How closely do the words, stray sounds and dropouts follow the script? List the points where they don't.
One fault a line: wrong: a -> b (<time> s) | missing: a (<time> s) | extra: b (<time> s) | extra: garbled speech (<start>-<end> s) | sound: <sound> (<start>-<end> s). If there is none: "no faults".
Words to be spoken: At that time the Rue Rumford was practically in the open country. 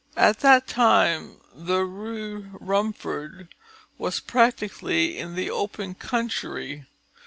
no faults